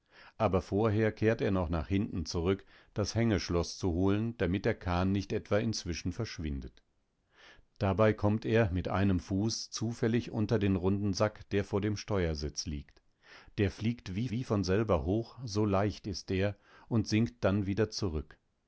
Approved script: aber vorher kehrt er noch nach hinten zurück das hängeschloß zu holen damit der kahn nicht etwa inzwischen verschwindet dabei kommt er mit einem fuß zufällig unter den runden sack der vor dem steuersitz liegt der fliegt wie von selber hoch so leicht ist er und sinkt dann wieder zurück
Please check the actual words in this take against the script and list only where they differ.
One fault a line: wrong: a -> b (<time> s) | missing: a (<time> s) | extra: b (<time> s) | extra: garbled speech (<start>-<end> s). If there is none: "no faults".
extra: wie (14.3 s)